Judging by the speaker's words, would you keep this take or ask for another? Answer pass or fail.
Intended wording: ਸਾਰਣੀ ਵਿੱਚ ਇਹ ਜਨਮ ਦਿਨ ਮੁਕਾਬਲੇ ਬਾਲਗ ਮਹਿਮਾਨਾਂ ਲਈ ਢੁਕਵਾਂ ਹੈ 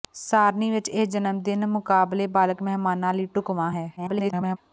fail